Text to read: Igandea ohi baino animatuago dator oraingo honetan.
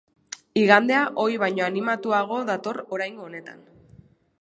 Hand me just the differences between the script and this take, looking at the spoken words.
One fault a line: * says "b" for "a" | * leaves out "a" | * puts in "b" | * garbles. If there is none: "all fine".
all fine